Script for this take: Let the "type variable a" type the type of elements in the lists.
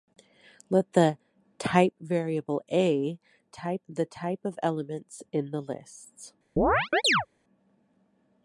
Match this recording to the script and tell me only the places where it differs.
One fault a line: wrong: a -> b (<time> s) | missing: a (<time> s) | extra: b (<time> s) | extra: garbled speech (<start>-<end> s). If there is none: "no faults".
no faults